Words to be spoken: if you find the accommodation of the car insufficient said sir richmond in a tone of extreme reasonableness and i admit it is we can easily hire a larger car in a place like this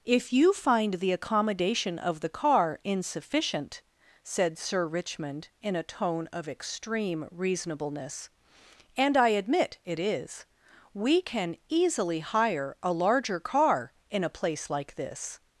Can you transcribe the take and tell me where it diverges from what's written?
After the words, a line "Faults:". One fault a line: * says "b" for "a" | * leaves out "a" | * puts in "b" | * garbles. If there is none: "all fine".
if you find the accommodation of the car insufficient said sir richmond in a tone of extreme reasonableness and i admit it is we can easily hire a larger car in a place like this
Faults:
all fine